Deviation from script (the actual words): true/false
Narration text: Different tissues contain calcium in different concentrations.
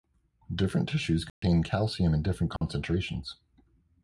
false